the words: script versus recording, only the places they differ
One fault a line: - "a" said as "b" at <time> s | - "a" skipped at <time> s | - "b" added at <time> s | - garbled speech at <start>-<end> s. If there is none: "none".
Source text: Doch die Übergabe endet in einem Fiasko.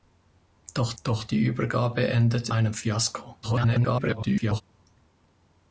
- "doch" added at 1.0 s
- "in" skipped at 2.5 s
- garbled speech at 3.4-4.6 s